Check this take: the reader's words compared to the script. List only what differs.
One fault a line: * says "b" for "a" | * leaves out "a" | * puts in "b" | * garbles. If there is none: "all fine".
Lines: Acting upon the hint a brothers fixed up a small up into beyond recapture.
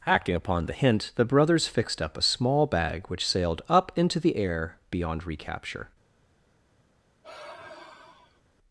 * says "the" for "a"
* puts in "bag which sailed"
* puts in "the air"